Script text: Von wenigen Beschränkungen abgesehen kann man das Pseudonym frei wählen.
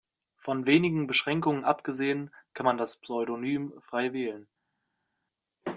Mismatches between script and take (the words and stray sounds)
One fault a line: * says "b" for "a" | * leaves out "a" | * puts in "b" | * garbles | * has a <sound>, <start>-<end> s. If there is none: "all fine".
all fine